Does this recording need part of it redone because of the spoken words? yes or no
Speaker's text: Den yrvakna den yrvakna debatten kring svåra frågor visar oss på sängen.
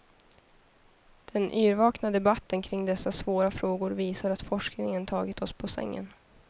yes